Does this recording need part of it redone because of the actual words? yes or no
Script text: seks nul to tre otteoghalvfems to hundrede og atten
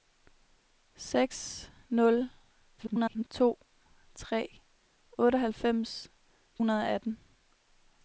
yes